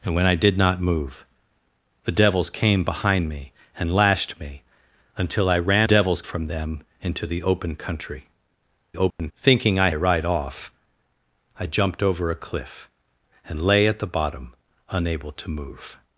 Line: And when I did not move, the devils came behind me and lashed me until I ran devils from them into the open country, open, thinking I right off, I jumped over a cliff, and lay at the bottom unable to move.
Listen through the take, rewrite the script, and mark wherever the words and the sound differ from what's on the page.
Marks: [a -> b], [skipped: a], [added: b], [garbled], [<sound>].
And when I did not move, the devils came behind me and lashed me until I ran devils from them into the open country, open, [dropout] thinking I right off, I jumped over a cliff, and lay at the bottom unable to move.